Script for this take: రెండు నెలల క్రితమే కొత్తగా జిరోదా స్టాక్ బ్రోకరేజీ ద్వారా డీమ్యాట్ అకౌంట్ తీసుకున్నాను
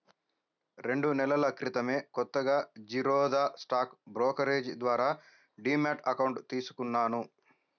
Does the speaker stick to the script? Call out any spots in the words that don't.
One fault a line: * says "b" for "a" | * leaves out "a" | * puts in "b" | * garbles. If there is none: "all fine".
all fine